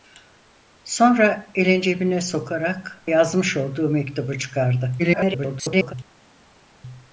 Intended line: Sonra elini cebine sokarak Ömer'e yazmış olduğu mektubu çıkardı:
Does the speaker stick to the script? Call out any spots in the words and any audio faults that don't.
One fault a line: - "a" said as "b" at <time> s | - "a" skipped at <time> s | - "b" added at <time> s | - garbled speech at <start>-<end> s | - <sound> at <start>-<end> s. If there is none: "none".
- "Ömer'e" skipped at 3.0 s
- garbled speech at 5.0-5.9 s